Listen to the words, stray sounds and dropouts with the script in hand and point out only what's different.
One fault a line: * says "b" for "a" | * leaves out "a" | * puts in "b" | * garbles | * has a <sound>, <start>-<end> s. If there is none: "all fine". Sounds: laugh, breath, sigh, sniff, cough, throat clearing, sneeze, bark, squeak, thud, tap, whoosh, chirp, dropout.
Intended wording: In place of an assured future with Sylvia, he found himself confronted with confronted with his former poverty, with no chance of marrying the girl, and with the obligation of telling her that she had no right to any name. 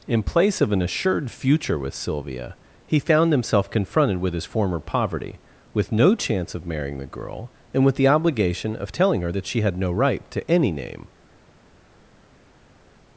* leaves out "confronted with"